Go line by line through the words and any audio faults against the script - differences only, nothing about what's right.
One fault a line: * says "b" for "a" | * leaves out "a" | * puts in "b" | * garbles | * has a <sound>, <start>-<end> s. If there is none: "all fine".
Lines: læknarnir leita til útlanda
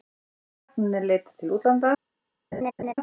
* has a laugh, 2.5-2.9 s